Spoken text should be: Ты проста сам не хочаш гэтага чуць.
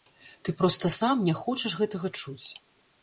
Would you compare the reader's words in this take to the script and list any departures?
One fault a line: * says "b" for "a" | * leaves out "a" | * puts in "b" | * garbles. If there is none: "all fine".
all fine